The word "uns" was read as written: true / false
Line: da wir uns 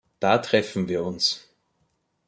true